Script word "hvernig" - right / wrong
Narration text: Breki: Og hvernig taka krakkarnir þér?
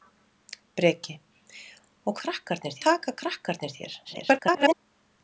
wrong